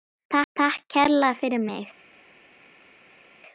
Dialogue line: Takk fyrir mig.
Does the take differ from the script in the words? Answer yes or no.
yes